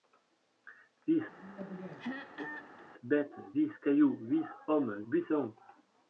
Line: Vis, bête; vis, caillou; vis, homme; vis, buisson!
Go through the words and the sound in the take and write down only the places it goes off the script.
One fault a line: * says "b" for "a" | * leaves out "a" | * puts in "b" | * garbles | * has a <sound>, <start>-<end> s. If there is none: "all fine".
* has a throat clearing, 1.3-2.8 s
* leaves out "vis"